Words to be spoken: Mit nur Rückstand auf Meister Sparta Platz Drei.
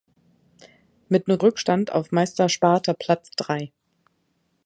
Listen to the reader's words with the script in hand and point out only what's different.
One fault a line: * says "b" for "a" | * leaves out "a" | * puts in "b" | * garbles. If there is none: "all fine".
all fine